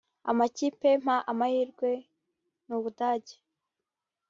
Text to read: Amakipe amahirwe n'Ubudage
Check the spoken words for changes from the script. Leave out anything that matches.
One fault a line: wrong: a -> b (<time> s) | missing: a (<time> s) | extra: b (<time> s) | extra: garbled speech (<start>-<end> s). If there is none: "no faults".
extra: mpa (1.0 s)